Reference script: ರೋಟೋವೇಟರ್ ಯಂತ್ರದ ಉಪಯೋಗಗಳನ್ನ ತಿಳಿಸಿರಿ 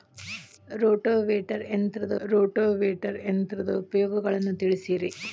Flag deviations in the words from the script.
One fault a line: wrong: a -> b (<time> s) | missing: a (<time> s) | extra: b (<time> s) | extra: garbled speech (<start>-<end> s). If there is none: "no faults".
extra: ರೋಟೋವೇಟರ್ ಯಂತ್ರದ (2.2 s)